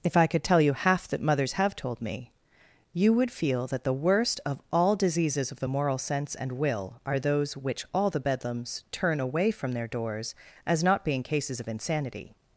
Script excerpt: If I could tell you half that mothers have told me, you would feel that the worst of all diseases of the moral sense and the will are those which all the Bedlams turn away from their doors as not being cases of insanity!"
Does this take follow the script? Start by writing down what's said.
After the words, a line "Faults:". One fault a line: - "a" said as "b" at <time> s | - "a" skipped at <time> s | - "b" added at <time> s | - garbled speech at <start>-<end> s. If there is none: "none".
If I could tell you half that mothers have told me, you would feel that the worst of all diseases of the moral sense and will are those which all the Bedlams turn away from their doors as not being cases of insanity!"
Faults:
- "the" skipped at 6.5 s